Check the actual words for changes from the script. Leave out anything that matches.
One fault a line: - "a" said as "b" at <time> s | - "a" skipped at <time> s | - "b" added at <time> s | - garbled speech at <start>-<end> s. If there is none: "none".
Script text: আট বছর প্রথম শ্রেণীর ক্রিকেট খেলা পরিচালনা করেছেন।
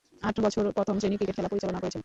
none